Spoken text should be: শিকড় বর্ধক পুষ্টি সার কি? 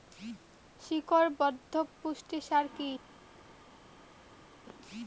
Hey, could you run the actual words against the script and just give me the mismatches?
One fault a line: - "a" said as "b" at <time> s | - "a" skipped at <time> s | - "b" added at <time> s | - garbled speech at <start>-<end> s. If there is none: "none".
none